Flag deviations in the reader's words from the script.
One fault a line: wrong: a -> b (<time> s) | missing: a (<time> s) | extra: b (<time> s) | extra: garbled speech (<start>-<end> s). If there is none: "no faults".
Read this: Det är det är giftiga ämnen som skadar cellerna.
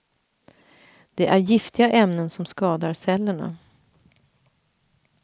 missing: det är (1.4 s)